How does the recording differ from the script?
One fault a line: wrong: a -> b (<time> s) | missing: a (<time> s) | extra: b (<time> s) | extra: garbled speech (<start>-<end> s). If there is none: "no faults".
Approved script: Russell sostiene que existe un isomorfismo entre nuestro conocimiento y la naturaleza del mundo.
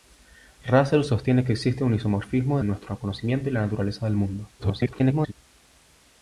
missing: entre (2.6 s)
extra: garbled speech (4.6-5.3 s)